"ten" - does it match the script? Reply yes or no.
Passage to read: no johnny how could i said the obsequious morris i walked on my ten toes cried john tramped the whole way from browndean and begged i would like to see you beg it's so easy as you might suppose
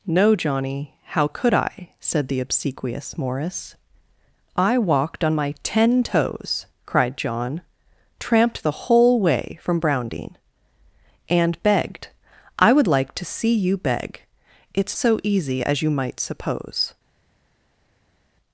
yes